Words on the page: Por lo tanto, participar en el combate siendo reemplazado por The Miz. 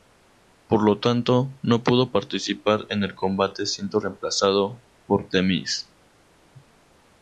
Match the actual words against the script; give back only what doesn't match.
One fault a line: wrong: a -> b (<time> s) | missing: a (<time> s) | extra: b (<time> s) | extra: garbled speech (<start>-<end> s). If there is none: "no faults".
extra: no pudo (1.6 s)